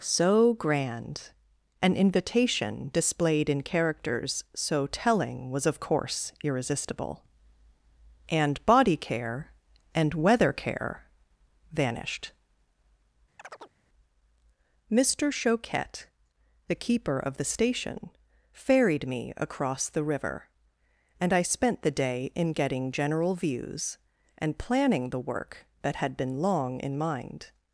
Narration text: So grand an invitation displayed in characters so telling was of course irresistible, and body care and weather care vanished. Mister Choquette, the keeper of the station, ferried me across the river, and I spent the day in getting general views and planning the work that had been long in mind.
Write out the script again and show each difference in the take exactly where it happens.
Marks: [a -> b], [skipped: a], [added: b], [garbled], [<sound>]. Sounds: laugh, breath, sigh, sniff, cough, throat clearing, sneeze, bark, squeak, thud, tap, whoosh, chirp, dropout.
So grand an invitation displayed in characters so telling was of course irresistible, and body care and weather care vanished. [chirp] Mister Choquette, the keeper of the station, ferried me across the river, and I spent the day in getting general views and planning the work that had been long in mind.